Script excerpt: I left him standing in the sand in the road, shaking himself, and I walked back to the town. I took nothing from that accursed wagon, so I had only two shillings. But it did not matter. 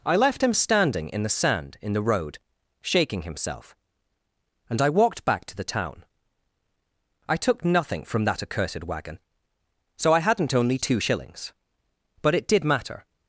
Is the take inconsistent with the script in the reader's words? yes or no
yes